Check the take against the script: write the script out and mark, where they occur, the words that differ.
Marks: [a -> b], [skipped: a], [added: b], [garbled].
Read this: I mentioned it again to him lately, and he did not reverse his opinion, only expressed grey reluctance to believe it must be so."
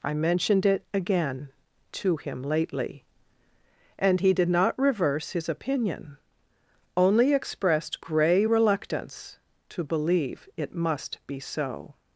I mentioned it again to him lately, and he did not reverse his opinion, only expressed grey reluctance to believe it must be so."